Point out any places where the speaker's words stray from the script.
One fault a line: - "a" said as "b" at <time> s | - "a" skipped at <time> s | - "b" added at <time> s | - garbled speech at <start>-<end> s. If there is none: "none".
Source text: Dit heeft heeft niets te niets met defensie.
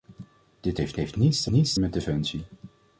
none